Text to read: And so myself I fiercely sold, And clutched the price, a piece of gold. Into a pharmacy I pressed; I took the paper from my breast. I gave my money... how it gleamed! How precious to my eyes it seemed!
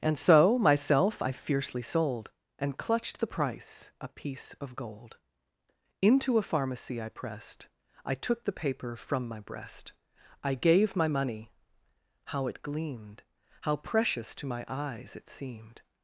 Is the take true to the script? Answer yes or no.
yes